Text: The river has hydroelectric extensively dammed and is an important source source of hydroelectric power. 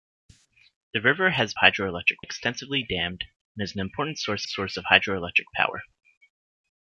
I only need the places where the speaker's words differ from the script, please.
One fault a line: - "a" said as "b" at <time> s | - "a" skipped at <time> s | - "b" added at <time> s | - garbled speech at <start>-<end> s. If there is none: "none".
none